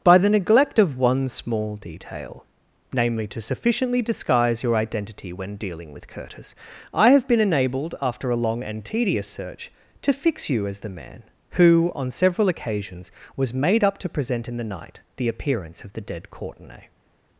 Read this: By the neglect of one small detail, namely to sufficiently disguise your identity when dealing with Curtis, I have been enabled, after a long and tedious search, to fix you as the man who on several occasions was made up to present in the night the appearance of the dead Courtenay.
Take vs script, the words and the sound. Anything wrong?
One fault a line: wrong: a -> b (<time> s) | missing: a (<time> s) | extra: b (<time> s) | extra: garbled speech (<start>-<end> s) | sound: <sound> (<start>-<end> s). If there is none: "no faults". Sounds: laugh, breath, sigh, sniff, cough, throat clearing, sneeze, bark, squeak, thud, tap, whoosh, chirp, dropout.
no faults